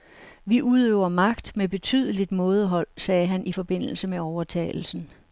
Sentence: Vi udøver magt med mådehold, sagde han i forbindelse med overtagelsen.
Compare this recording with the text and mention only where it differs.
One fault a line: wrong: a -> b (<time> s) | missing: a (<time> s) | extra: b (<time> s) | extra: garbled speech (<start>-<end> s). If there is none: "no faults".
extra: betydeligt (1.7 s)